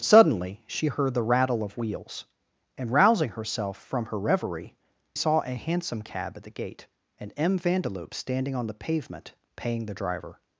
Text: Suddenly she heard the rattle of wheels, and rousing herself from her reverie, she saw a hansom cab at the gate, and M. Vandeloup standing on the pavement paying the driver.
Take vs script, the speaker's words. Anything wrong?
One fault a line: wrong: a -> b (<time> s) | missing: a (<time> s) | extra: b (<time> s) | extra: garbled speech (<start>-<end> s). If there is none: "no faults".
missing: she (4.7 s)